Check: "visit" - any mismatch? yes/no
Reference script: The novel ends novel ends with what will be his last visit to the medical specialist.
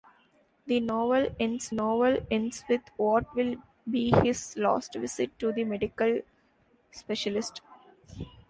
no